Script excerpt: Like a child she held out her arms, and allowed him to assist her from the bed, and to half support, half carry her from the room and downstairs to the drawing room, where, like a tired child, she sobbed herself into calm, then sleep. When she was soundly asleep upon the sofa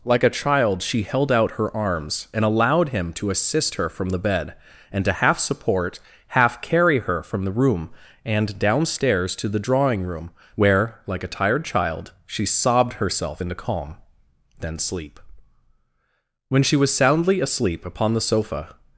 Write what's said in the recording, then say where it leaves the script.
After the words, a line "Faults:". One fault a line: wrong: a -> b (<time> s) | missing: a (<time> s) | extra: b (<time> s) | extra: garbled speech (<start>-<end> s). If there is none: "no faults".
Like a child she held out her arms, and allowed him to assist her from the bed, and to half support, half carry her from the room and downstairs to the drawing room, where, like a tired child, she sobbed herself into calm, then sleep. When she was soundly asleep upon the sofa
Faults:
no faults